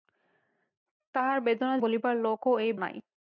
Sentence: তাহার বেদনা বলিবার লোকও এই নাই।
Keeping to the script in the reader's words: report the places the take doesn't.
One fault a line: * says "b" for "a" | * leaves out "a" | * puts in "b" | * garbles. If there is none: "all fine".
all fine